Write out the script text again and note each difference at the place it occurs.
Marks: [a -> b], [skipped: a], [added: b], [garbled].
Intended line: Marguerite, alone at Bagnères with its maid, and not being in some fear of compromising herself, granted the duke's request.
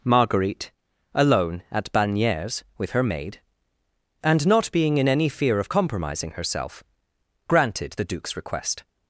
Marguerite, alone at Bagnères with [its -> her] maid, and not being in [some -> any] fear of compromising herself, granted the duke's request.